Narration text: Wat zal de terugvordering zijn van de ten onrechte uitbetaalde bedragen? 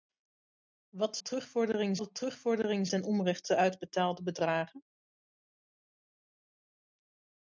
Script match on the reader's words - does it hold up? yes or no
no